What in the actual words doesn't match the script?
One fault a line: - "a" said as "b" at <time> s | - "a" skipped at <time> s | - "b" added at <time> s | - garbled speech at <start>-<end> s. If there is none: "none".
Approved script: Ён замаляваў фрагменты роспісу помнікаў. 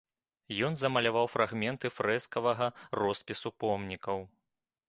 - "фрэскавага" added at 2.0 s